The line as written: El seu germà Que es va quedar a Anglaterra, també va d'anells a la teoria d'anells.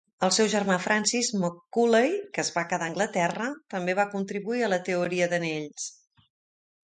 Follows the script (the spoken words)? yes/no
no